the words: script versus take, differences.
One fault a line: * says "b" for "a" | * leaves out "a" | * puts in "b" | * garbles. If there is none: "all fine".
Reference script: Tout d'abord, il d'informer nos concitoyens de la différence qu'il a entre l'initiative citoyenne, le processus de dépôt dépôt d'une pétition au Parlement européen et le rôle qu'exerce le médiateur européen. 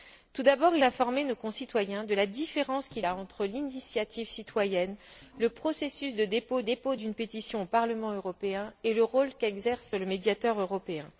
all fine